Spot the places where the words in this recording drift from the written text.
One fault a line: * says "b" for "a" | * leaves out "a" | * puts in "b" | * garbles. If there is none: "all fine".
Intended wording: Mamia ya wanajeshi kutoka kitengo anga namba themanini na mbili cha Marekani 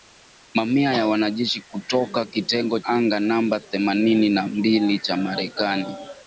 all fine